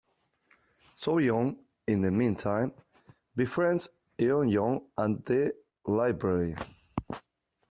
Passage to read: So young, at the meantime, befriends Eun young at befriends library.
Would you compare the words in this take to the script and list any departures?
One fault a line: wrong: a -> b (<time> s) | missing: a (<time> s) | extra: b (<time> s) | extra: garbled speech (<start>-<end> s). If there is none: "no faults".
wrong: at -> in (1.9 s)
wrong: befriends -> the (5.2 s)